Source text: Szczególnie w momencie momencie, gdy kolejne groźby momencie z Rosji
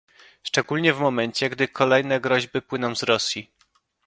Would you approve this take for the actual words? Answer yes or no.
no